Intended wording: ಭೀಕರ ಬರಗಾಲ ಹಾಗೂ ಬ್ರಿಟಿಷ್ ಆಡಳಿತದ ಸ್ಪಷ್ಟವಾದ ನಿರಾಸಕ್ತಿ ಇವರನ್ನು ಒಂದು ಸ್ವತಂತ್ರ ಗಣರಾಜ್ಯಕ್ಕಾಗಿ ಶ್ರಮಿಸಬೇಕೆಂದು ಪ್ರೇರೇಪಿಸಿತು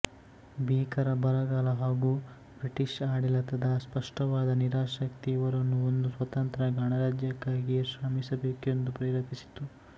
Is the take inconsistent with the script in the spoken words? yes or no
no